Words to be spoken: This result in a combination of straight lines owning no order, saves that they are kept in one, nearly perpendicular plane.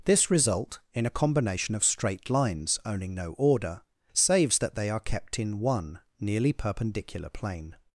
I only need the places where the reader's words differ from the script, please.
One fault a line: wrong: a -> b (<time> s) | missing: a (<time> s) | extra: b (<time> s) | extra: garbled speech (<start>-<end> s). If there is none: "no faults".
no faults